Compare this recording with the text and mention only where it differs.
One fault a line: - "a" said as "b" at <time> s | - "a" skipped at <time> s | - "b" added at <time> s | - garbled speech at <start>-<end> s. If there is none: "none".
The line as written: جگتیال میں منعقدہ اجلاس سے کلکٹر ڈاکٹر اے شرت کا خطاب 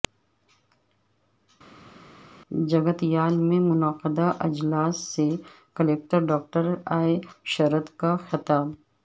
none